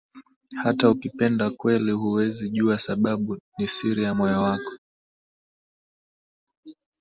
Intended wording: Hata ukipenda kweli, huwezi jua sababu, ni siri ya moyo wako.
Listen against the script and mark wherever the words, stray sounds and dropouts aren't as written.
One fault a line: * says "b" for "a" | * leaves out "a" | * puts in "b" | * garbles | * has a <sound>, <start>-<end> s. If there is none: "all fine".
all fine